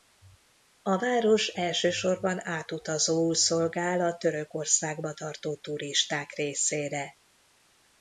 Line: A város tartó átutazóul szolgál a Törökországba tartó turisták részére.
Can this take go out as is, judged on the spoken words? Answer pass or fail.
fail